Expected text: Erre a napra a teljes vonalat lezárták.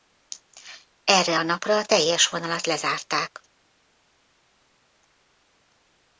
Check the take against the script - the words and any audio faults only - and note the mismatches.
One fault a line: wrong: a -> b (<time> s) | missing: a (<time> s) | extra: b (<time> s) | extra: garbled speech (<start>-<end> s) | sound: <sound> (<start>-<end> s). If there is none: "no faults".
no faults